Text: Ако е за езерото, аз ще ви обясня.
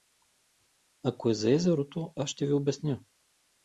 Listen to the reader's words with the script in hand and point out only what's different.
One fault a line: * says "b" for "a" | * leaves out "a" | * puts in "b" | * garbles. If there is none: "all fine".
all fine